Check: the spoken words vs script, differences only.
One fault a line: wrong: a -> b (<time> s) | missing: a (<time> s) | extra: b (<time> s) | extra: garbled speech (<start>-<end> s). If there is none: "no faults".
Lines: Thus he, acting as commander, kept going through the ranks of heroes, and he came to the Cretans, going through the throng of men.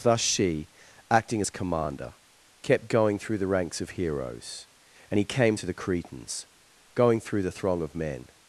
wrong: he -> she (0.2 s)